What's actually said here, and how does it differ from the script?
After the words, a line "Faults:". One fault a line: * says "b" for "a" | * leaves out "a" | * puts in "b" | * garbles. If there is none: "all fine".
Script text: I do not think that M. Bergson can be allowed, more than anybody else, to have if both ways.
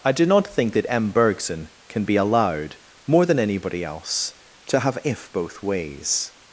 I do not think that M. Bergson can be allowed, more than anybody else, to have if both ways.
Faults:
all fine